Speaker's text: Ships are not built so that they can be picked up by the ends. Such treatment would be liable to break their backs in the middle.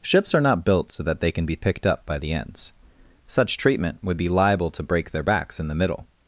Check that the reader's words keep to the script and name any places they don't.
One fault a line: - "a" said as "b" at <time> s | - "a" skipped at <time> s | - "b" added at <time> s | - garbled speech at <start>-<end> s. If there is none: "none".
none